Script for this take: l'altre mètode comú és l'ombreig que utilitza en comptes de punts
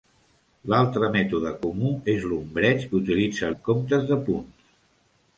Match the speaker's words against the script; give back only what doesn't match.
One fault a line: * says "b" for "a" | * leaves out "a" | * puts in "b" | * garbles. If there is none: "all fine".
all fine